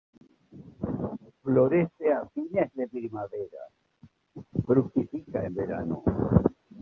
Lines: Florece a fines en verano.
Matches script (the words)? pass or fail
fail